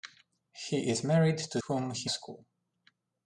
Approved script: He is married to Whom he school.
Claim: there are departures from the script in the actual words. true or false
false